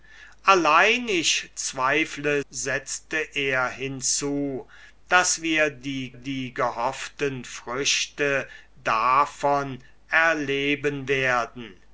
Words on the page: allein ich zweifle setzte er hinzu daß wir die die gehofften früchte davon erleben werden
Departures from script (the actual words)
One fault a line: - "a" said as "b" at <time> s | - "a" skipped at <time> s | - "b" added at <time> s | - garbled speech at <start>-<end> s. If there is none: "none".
none